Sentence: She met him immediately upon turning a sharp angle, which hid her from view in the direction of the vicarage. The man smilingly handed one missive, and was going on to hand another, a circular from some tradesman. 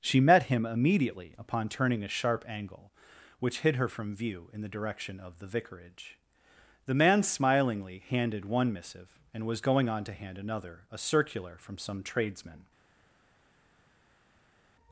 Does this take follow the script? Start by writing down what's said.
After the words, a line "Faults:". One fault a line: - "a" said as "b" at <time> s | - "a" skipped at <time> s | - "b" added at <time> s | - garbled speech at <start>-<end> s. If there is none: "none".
She met him immediately upon turning a sharp angle, which hid her from view in the direction of the vicarage. The man smilingly handed one missive, and was going on to hand another, a circular from some tradesman.
Faults:
none